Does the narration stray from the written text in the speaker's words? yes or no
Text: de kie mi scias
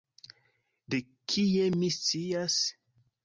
no